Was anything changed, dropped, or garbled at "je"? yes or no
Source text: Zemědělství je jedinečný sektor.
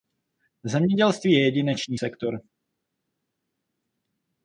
no